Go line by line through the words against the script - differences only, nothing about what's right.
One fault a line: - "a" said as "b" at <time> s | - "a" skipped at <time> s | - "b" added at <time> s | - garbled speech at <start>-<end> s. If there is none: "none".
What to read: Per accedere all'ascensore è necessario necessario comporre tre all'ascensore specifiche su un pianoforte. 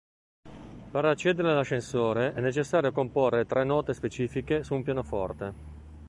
- "necessario" skipped at 2.9 s
- "all'ascensore" said as "note" at 3.6 s